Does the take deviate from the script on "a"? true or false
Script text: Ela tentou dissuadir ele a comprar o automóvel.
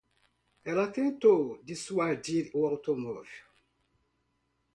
true